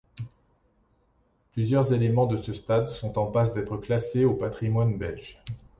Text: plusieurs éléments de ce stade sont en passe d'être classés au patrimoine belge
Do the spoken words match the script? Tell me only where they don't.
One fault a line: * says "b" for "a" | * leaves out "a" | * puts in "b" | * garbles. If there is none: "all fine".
all fine